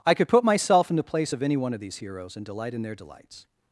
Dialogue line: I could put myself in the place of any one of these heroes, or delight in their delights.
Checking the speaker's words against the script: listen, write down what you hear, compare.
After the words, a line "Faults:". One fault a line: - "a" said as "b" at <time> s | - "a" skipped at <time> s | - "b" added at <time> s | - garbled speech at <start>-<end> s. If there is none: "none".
I could put myself in the place of any one of these heroes, and delight in their delights.
Faults:
- "or" said as "and" at 2.4 s